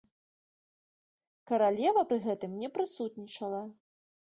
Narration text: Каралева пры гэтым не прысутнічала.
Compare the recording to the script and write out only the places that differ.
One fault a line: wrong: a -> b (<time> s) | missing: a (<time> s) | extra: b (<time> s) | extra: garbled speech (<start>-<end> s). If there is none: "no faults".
no faults